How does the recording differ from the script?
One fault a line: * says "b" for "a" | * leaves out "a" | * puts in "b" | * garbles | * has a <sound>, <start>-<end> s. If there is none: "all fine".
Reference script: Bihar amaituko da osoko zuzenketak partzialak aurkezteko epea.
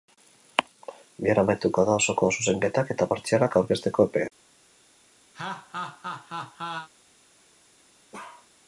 * puts in "eta"
* has a laugh, 5.3-6.9 s
* has a bark, 8.1-8.5 s